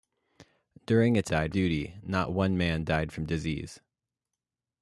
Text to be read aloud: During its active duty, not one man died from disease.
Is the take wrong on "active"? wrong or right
wrong